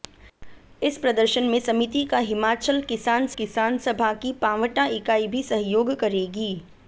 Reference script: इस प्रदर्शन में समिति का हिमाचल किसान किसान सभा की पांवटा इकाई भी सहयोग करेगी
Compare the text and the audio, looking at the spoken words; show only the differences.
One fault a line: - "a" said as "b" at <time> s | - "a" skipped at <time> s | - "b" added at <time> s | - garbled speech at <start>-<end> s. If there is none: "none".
none